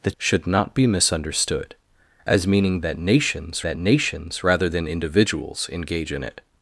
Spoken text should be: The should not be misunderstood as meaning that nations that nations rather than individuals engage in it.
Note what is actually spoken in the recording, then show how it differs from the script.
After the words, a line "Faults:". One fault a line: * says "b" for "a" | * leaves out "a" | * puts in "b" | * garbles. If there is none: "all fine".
The should not be misunderstood as meaning that nations that nations rather than individuals engage in it.
Faults:
all fine